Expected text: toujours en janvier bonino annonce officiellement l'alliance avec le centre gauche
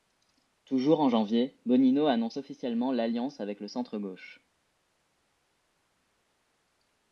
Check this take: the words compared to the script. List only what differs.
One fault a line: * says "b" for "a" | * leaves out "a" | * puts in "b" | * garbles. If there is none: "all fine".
all fine